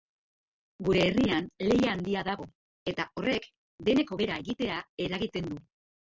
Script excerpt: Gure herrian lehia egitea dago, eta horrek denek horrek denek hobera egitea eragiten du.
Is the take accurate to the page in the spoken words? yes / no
no